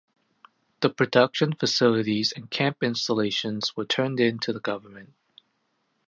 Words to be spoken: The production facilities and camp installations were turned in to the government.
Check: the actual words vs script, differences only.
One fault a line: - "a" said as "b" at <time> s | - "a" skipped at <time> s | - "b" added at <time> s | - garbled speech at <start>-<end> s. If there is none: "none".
none